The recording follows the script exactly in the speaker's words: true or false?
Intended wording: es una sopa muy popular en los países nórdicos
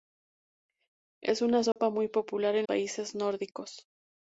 false